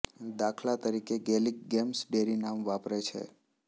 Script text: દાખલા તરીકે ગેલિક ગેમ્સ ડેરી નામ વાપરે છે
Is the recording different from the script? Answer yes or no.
no